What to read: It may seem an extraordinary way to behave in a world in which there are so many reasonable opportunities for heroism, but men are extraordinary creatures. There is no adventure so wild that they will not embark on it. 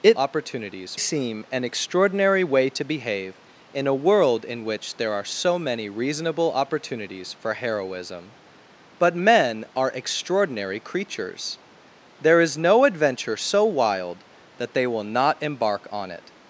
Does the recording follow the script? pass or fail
fail